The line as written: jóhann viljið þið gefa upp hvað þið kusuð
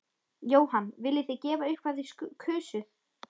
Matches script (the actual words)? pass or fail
pass